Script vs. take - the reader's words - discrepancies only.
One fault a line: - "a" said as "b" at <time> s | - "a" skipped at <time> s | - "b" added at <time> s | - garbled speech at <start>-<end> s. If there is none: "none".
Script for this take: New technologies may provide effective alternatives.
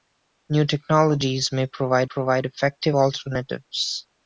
- "provide" added at 2.0 s